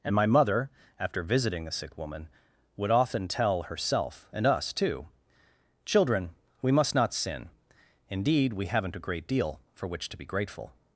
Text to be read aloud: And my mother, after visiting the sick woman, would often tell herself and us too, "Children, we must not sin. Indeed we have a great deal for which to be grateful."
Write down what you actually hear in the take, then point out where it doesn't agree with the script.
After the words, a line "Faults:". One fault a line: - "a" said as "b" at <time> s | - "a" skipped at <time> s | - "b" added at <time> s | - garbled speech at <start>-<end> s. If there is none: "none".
And my mother, after visiting the sick woman, would often tell herself and us too, "Children, we must not sin. Indeed we haven't a great deal for which to be grateful."
Faults:
- "have" said as "haven't" at 8.7 s